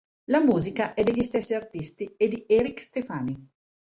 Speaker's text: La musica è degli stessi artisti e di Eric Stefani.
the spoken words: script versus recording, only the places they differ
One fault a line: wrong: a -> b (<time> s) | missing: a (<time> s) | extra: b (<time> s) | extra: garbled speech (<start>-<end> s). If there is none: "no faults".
no faults